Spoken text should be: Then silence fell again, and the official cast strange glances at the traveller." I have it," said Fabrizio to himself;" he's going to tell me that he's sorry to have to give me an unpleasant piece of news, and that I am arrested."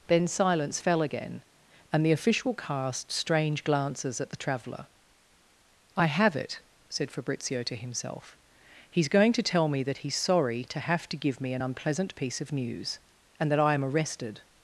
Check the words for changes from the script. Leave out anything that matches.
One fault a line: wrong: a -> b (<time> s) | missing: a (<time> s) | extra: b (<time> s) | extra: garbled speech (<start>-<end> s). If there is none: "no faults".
no faults